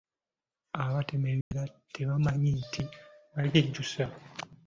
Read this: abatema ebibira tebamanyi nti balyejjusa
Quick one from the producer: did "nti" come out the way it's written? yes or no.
yes